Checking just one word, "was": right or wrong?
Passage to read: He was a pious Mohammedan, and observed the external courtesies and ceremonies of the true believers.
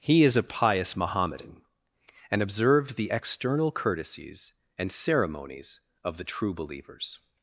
wrong